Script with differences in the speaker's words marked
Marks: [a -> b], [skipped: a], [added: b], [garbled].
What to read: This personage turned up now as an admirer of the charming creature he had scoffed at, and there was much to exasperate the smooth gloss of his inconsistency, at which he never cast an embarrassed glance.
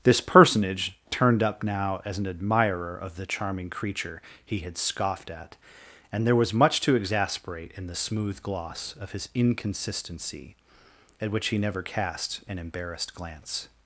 This personage turned up now as an admirer of the charming creature he had scoffed at, and there was much to exasperate [added: in] the smooth gloss of his inconsistency, at which he never cast an embarrassed glance.